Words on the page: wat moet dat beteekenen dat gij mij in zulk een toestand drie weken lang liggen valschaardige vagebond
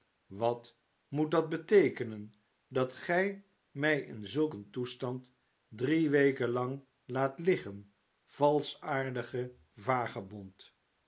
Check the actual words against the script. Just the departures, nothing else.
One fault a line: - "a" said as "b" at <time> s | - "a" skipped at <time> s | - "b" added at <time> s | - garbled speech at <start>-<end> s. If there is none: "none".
- "laat" added at 7.0 s